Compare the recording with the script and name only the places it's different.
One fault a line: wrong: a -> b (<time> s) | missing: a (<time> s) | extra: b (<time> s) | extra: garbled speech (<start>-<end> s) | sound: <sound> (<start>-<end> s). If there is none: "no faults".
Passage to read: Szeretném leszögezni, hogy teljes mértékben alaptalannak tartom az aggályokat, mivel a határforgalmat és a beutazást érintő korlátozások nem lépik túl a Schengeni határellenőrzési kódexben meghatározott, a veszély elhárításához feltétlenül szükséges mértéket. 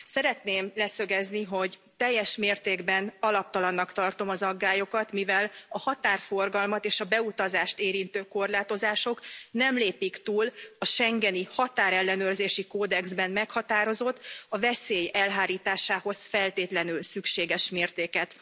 no faults